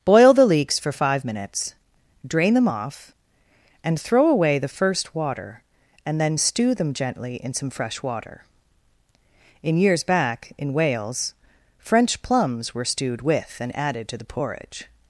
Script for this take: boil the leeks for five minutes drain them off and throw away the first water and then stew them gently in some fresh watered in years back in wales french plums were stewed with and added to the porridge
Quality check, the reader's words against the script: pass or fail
fail